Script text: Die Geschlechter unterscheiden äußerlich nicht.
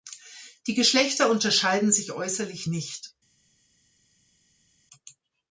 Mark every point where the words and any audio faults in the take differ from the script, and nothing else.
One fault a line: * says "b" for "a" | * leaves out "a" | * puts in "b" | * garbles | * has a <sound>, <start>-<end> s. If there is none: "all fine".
* puts in "sich"